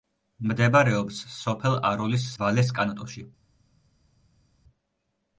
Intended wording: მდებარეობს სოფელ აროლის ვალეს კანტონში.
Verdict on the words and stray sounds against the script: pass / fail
pass